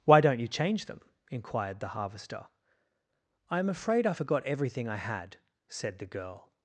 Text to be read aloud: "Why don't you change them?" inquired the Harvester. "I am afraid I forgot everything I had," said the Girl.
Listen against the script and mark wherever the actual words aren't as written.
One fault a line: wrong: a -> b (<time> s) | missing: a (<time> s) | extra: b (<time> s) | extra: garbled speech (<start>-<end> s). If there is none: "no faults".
no faults